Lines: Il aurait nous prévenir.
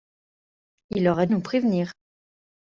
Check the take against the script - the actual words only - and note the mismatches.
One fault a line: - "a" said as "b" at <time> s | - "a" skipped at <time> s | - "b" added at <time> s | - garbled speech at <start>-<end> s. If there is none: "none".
none